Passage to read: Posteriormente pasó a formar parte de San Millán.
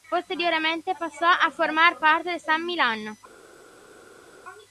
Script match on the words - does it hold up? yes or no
yes